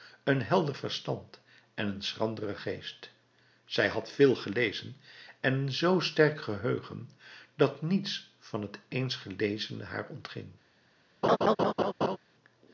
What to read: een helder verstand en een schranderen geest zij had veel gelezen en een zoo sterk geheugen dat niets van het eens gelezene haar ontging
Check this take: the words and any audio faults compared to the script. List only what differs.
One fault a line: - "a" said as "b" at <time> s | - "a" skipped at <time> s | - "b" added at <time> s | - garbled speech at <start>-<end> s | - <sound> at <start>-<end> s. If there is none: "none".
- laugh at 11.2-12.2 s